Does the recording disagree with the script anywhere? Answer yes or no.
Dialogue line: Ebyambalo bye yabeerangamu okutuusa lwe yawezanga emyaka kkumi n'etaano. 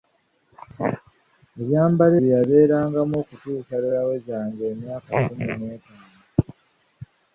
no